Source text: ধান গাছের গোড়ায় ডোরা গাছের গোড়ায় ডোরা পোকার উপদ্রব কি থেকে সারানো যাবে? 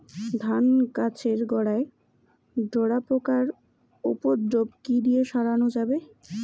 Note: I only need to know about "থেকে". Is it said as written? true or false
false